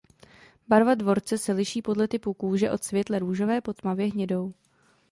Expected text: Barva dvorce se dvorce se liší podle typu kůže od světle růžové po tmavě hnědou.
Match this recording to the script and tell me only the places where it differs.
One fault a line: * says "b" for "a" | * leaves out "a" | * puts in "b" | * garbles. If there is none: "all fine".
* leaves out "dvorce se"